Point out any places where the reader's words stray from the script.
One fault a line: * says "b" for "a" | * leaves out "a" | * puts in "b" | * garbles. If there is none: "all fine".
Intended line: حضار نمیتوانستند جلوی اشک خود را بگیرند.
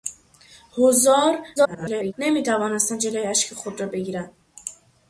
* garbles